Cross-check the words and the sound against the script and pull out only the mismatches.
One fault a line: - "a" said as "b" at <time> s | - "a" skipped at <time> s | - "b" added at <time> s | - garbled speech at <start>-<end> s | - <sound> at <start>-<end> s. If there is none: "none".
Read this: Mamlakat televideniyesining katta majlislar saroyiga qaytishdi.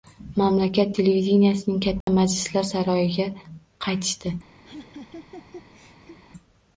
- dropout at 2.0-2.1 s
- laugh at 4.6-6.2 s